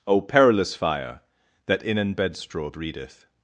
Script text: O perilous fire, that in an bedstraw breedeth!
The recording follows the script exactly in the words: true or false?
true